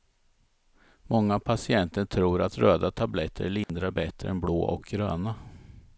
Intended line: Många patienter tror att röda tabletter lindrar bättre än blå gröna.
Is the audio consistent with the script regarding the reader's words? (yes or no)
no